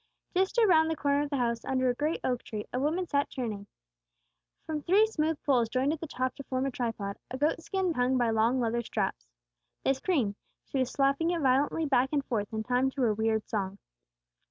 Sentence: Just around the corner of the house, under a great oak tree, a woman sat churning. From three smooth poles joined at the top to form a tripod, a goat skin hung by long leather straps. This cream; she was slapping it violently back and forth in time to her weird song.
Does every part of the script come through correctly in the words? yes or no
yes